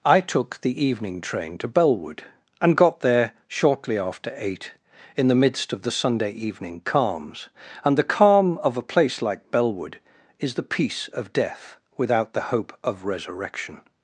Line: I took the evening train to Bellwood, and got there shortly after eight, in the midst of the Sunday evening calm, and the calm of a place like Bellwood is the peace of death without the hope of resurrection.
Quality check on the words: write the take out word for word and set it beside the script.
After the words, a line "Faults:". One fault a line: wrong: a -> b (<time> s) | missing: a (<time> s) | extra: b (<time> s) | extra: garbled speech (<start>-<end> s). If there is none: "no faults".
I took the evening train to Bellwood, and got there shortly after eight, in the midst of the Sunday evening calms, and the calm of a place like Bellwood is the peace of death without the hope of resurrection.
Faults:
wrong: calm -> calms (6.8 s)